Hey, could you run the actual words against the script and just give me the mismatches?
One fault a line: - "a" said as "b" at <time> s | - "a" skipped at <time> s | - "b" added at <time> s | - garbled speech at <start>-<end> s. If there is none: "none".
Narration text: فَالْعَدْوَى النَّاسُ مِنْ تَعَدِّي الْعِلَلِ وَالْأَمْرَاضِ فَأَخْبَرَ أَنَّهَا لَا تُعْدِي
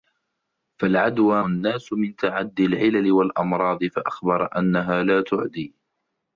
none